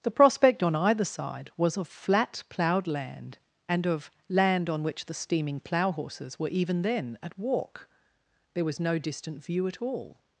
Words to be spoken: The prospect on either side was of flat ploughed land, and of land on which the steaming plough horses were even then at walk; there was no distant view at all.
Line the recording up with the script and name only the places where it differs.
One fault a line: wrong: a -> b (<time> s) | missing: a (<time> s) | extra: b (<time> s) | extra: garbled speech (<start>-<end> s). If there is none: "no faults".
no faults